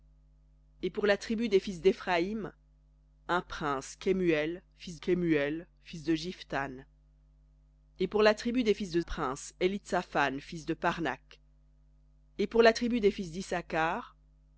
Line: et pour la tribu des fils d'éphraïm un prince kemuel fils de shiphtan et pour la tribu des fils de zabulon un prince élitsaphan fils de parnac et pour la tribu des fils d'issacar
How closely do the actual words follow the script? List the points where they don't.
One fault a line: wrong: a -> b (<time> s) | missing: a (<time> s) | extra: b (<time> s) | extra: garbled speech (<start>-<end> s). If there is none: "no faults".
extra: kemuel fils (5.0 s)
missing: zabulon un (9.0 s)